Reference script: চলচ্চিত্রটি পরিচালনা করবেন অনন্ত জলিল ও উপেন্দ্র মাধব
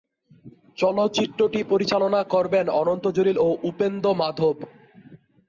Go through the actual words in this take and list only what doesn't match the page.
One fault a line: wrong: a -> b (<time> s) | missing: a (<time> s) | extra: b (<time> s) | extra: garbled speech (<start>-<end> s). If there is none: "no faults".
no faults